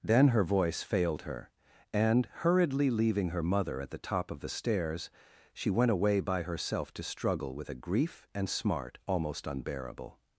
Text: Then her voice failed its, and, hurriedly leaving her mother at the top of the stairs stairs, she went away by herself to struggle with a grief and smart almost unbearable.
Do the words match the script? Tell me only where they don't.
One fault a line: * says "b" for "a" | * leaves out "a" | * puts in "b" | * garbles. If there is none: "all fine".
* says "her" for "its"
* leaves out "stairs"